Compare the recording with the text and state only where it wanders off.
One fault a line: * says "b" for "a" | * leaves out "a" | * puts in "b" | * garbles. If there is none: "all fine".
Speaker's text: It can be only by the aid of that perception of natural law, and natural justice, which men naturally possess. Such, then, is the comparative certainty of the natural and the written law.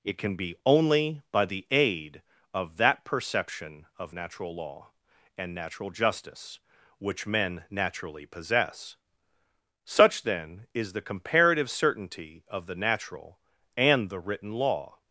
all fine